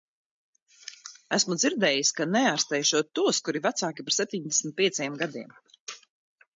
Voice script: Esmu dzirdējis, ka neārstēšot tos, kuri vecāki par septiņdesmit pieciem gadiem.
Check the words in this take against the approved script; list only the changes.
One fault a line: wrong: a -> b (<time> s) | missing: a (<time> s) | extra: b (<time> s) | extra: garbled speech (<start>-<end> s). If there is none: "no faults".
no faults